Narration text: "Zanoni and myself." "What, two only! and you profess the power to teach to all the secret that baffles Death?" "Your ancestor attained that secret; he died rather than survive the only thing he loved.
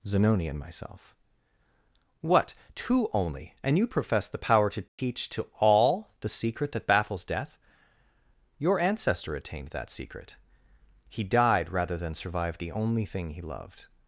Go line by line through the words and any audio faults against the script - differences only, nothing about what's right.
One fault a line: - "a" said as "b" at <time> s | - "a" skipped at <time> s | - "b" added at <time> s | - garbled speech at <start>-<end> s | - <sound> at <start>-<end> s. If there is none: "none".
- dropout at 4.9-5.0 s